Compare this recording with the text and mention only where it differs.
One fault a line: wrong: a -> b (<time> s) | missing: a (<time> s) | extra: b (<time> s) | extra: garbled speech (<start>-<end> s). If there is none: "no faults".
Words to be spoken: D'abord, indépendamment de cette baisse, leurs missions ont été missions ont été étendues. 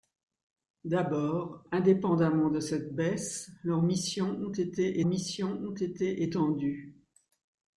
no faults